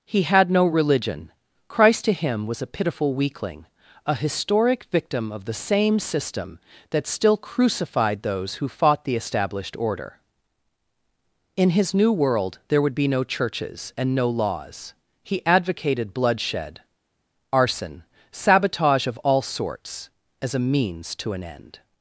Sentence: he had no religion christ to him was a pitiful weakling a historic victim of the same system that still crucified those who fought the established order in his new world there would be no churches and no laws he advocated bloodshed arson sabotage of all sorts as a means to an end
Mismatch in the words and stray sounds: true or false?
false